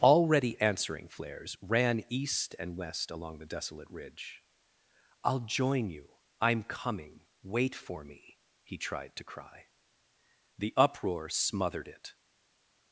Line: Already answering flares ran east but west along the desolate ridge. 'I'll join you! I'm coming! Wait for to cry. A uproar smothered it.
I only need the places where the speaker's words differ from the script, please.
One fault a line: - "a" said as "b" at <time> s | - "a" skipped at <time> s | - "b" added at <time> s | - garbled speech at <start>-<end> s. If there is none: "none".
- "but" said as "and" at 2.6 s
- "me he tried" added at 8.0 s
- "A" said as "The" at 10.6 s